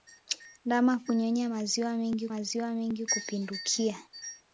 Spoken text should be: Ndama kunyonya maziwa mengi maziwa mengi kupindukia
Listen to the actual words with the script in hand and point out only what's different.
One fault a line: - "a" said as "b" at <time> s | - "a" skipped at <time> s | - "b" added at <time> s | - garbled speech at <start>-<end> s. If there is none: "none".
none